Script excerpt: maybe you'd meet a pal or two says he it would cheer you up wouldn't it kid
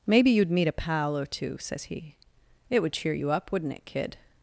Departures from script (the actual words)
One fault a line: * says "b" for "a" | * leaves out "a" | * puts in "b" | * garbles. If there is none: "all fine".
all fine